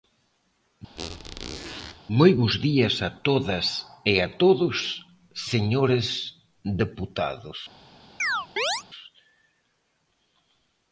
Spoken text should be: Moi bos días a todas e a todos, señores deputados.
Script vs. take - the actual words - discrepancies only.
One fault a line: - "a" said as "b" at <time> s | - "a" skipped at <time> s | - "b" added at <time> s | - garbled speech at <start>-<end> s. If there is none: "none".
none